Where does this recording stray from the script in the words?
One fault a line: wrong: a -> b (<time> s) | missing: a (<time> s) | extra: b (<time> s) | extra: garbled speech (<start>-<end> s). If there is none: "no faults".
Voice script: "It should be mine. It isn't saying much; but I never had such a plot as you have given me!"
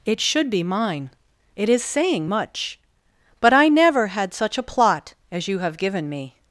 wrong: isn't -> is (1.7 s)